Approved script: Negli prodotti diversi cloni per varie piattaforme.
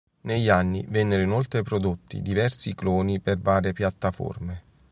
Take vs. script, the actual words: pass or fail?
fail